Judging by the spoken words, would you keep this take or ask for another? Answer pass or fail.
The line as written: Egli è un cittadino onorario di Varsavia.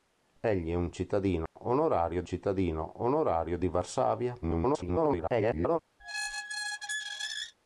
fail